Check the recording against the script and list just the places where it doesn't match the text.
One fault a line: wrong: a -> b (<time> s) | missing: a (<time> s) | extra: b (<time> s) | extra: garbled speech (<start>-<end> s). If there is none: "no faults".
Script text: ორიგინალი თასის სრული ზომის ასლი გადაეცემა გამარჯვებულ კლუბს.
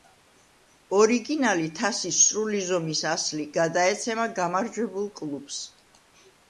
no faults